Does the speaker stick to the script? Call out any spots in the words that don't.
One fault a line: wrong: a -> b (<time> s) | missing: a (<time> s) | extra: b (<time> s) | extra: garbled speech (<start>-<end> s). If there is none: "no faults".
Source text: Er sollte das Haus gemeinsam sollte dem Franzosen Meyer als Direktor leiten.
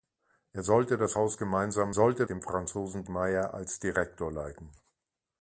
no faults